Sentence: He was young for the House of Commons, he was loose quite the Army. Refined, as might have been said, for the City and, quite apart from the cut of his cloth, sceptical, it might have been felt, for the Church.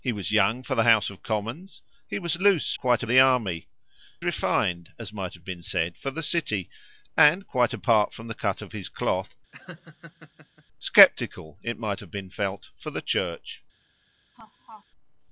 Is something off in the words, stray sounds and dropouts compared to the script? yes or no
yes